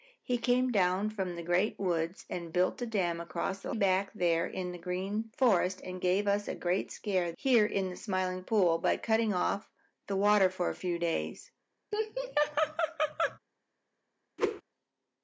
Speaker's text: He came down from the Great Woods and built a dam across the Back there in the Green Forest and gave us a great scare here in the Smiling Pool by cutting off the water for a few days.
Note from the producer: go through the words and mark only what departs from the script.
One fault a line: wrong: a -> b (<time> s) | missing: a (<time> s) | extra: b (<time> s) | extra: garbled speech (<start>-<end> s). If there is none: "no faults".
no faults